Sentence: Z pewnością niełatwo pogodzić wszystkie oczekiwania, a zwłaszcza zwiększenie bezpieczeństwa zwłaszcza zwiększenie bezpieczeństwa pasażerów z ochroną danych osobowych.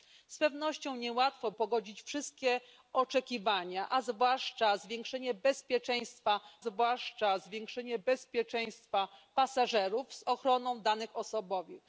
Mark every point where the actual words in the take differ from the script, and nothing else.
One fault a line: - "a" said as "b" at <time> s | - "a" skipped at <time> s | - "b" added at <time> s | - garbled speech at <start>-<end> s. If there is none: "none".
none